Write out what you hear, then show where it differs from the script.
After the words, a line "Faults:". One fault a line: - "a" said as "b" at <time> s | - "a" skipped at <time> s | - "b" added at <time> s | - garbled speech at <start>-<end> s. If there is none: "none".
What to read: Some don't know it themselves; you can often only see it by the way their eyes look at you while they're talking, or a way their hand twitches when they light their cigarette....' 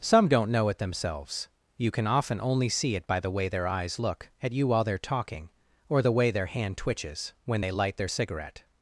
Some don't know it themselves; you can often only see it by the way their eyes look at you while they're talking, or the way their hand twitches when they light their cigarette....'
Faults:
- "a" said as "the" at 6.0 s